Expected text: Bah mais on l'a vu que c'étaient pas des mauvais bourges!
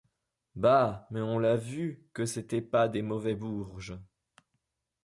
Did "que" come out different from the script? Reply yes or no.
no